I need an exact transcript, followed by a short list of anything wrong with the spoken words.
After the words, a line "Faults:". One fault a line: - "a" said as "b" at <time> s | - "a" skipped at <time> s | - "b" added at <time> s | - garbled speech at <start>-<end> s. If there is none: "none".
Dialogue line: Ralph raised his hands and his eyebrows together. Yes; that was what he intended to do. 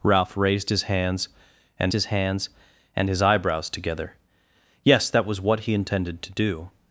Ralph raised his hands and his hands and his eyebrows together. Yes; that was what he intended to do.
Faults:
- "hands and his" added at 2.1 s